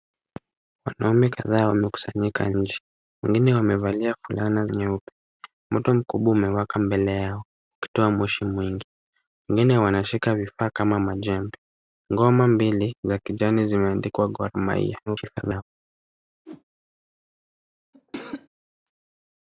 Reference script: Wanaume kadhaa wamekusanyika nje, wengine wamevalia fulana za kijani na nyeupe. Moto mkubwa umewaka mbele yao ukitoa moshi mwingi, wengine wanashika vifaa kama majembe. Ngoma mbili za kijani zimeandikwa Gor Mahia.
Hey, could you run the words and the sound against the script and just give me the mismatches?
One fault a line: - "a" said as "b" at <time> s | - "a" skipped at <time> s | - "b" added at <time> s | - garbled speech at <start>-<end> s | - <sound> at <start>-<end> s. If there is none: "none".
- "za kijani na" skipped at 4.7 s
- garbled speech at 15.1-15.6 s
- whoosh at 16.5-16.6 s
- cough at 17.9-18.5 s